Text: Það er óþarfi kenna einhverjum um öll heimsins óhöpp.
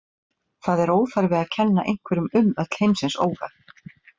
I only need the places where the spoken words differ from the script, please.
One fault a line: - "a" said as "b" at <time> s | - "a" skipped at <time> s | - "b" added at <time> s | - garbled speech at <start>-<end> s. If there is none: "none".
- "að" added at 1.4 s